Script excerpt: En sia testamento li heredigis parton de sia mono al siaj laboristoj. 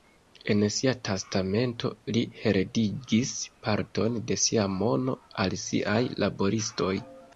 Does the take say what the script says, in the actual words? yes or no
yes